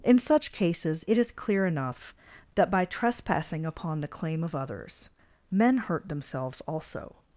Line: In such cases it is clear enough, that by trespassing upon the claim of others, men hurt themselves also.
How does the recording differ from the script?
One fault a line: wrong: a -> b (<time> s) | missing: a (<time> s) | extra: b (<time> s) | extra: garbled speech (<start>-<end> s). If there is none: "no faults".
no faults